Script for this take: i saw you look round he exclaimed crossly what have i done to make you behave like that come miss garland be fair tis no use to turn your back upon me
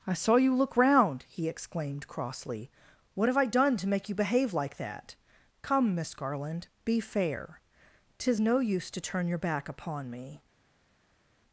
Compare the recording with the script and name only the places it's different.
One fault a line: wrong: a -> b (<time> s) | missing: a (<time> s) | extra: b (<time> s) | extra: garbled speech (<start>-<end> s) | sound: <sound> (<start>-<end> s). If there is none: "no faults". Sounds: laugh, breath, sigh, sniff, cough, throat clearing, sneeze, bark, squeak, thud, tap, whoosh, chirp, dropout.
no faults